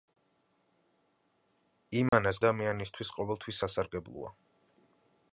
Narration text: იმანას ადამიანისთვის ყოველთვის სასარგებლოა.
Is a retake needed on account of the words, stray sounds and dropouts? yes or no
yes